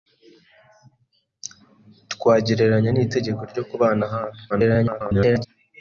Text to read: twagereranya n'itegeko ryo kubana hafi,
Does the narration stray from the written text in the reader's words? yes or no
yes